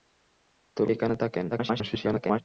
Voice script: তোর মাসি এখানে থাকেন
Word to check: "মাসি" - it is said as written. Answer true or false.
false